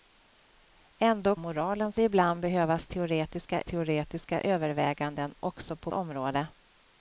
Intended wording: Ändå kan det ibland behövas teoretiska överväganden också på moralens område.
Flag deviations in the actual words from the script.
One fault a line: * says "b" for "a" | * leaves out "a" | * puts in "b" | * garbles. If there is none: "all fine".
* says "moralens" for "kan"
* puts in "teoretiska"
* leaves out "moralens"